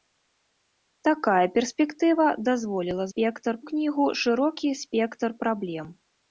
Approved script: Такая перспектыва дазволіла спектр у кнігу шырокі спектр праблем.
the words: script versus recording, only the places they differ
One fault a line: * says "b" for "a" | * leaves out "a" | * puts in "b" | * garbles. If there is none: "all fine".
all fine